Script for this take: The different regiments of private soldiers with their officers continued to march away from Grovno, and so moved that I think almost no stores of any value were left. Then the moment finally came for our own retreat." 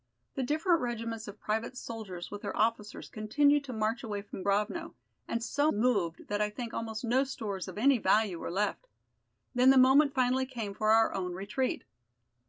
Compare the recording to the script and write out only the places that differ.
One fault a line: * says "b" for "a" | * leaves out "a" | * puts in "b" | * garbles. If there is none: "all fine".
all fine